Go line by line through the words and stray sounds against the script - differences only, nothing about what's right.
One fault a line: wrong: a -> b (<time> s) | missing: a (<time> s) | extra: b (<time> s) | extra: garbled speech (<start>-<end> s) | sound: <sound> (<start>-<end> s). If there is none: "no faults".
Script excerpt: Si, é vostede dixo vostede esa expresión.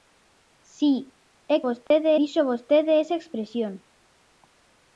sound: dropout (1.9-1.9 s)